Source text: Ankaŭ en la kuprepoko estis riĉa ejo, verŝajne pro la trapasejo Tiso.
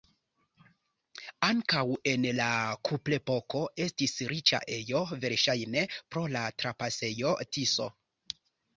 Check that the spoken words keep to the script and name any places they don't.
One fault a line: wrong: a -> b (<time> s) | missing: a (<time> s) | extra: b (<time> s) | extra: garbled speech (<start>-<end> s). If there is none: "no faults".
no faults